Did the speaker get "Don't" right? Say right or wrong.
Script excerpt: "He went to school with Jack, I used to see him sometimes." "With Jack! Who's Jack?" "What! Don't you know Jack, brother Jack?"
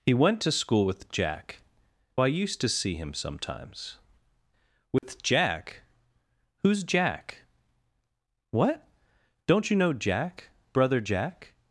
right